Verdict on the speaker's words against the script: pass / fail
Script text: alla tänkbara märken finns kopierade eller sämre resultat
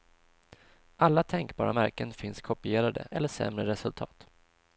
pass